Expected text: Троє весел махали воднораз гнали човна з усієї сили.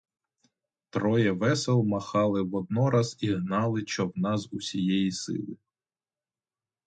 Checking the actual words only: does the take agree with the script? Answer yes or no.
no